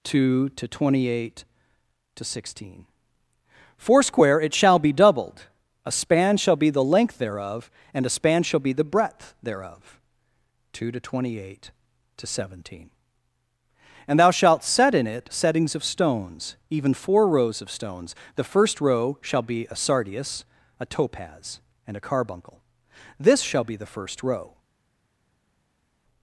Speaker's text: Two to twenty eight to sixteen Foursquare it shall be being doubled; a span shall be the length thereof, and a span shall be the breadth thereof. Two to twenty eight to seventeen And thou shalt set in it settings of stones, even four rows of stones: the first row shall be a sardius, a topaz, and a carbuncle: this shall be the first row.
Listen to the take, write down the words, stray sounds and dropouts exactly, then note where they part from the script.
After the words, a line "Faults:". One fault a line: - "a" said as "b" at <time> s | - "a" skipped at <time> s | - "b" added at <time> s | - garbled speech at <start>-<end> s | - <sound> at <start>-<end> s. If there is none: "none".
Two to twenty eight to sixteen Foursquare it shall be doubled; a span shall be the length thereof, and a span shall be the breadth thereof. Two to twenty eight to seventeen And thou shalt set in it settings of stones, even four rows of stones: the first row shall be a sardius, a topaz, and a carbuncle: this shall be the first row.
Faults:
- "being" skipped at 4.9 s